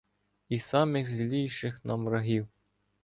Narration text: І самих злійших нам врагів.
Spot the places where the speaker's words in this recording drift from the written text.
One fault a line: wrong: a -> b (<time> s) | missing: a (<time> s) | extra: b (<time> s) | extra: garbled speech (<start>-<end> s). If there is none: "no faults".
no faults